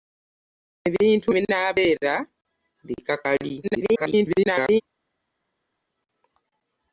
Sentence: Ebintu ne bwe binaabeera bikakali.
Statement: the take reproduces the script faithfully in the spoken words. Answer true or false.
false